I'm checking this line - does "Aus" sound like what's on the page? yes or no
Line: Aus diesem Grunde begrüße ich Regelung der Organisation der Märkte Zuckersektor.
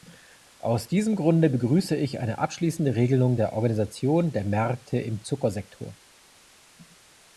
yes